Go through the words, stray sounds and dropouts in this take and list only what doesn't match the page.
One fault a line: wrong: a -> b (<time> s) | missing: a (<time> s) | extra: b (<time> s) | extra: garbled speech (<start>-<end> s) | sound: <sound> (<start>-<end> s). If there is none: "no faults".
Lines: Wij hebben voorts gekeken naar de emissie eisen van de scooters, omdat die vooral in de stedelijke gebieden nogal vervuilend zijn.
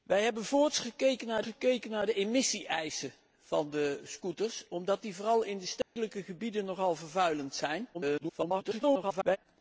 extra: gekeken naar (1.4 s)
sound: dropout (5.8-6.0 s)
extra: garbled speech (7.9-9.4 s)